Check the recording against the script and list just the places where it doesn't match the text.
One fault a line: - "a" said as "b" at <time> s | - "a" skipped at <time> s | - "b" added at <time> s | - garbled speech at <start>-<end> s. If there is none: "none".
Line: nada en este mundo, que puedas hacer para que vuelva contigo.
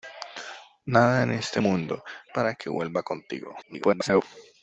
- "que puedas hacer" skipped at 2.0 s
- garbled speech at 3.6-4.2 s